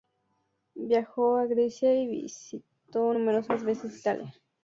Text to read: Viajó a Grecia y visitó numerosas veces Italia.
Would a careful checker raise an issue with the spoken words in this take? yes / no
no